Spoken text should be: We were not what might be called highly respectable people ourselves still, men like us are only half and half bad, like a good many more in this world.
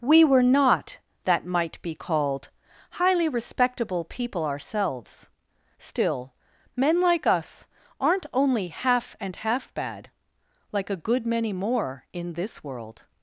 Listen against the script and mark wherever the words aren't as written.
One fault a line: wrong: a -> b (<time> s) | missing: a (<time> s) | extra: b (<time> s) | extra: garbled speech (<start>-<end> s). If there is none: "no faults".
wrong: what -> that (1.2 s)
wrong: are -> aren't (8.0 s)